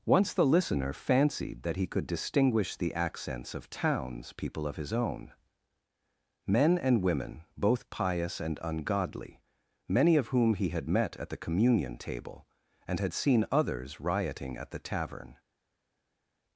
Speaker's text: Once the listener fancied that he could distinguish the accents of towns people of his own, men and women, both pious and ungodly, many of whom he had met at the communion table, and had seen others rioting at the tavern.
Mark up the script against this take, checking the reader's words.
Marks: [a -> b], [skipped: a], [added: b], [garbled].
Once the listener fancied that he could distinguish the accents of towns people of his own, men and women, both pious and ungodly, many of whom he had met at the communion table, and had seen others rioting at the tavern.